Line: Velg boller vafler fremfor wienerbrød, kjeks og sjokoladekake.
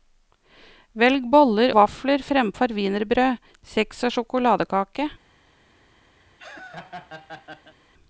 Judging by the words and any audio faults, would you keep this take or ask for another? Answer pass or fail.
fail